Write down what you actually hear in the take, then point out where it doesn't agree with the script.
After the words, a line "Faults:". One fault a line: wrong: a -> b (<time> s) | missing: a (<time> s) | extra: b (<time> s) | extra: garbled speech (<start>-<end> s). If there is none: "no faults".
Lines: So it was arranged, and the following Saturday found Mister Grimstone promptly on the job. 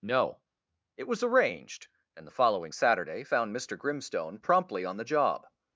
No it was arranged, and the following Saturday found Mister Grimstone promptly on the job.
Faults:
wrong: So -> No (0.0 s)